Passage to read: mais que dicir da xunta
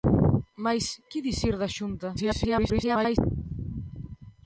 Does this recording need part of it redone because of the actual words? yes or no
yes